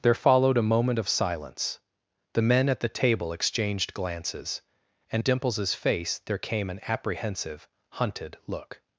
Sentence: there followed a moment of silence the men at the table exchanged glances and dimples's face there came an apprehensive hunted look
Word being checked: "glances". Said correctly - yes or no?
yes